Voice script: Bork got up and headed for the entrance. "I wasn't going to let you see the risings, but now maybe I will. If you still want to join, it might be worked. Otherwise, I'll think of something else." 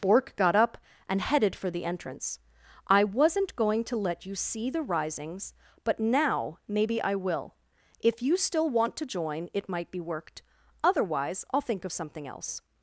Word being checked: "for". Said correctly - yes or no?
yes